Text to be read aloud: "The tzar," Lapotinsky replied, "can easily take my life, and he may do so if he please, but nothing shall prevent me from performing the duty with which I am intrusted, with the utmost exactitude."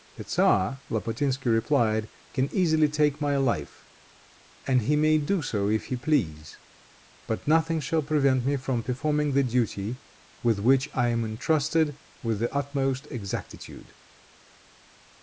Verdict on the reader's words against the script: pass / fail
pass